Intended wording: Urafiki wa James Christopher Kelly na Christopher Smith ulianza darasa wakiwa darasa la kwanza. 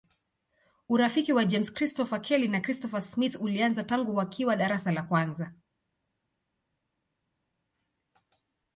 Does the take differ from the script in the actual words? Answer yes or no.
yes